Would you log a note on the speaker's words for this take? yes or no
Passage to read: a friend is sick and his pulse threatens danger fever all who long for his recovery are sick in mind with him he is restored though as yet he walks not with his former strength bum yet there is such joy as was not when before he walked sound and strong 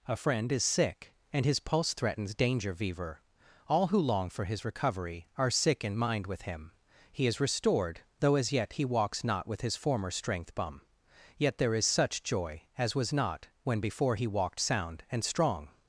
no